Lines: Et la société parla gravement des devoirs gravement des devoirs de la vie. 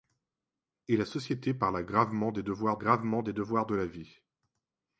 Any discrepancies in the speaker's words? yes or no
no